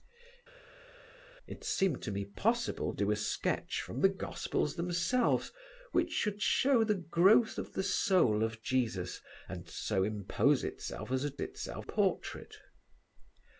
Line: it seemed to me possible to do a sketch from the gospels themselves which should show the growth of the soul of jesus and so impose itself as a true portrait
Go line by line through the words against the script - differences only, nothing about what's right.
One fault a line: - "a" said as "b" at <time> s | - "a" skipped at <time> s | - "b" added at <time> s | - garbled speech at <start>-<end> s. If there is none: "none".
- "to" skipped at 2.9 s
- "true" said as "itself" at 11.4 s